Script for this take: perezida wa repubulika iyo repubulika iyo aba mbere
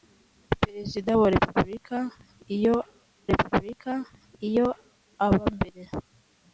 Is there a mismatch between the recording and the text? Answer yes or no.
no